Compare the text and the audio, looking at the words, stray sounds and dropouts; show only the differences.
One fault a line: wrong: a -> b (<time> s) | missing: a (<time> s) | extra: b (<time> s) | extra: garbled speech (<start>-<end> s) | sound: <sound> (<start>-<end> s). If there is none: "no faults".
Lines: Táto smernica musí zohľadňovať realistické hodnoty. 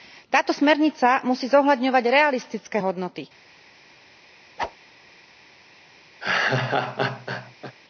sound: whoosh (4.6-4.8 s)
sound: laugh (6.2-7.8 s)